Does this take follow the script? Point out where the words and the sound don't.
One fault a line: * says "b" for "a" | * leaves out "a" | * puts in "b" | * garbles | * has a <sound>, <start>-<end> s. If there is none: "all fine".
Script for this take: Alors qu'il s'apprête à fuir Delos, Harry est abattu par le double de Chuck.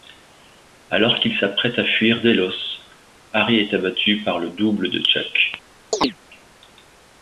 * has a chirp, 5.9-6.2 s